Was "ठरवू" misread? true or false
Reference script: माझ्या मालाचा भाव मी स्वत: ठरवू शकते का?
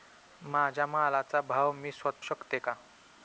true